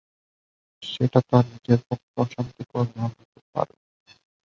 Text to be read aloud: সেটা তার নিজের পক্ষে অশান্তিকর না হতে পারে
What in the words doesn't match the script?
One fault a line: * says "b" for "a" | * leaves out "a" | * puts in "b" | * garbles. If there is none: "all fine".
all fine